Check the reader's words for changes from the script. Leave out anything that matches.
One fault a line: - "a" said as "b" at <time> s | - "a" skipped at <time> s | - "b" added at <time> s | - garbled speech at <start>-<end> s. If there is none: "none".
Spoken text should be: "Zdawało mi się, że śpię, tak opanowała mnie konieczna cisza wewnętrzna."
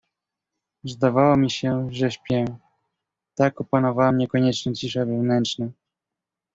none